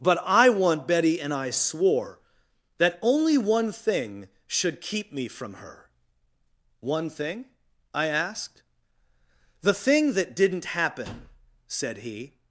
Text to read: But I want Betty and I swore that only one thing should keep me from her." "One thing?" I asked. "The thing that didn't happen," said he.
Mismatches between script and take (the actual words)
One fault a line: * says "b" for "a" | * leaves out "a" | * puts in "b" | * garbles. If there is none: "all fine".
all fine